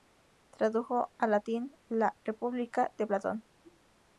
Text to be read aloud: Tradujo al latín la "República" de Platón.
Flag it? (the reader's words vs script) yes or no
no